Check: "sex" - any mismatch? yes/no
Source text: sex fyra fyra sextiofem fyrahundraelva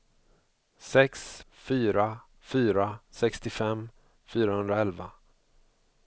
no